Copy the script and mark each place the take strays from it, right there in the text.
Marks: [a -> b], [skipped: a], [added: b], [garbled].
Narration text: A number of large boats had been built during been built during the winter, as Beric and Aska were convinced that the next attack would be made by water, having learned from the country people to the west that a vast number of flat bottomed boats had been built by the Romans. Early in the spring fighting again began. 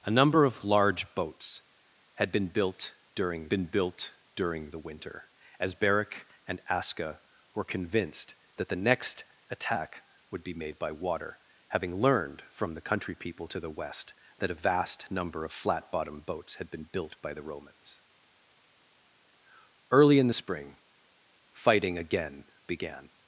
A number of large boats had been built during been built during the winter, as Beric and Aska were convinced that the next attack would be made by water, having learned from the country people to the west that a vast number of flat bottomed boats had been built by the Romans. Early in the spring fighting again began.